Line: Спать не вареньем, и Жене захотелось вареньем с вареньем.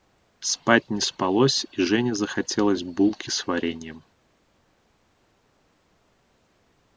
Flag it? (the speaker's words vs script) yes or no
yes